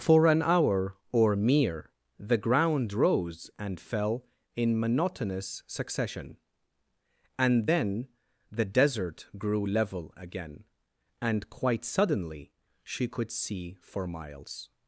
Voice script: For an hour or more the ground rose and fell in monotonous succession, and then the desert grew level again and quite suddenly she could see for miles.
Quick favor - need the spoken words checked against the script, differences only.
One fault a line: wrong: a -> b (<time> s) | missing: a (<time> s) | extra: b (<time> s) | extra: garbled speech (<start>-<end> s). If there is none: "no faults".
wrong: more -> mere (1.4 s)